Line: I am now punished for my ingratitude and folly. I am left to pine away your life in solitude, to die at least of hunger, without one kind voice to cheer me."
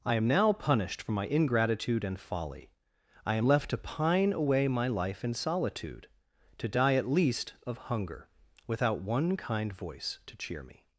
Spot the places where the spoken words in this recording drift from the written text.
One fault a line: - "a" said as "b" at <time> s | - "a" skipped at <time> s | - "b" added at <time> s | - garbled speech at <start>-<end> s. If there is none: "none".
- "your" said as "my" at 4.7 s